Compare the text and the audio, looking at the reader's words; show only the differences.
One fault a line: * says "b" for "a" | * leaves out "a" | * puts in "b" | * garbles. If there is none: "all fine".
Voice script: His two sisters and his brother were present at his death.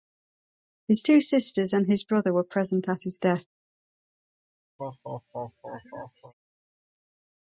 all fine